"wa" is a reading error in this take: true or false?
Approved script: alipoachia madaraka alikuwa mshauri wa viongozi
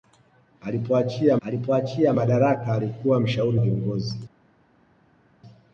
true